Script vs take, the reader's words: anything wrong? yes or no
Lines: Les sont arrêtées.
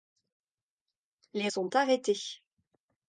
no